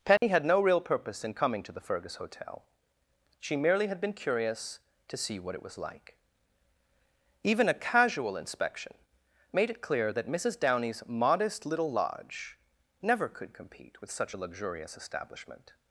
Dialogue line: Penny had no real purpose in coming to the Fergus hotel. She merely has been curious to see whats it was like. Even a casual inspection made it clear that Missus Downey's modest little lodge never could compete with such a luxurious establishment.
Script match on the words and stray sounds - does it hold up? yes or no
no